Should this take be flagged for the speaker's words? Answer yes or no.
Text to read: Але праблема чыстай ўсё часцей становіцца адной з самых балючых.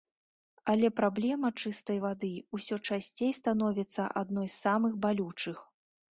yes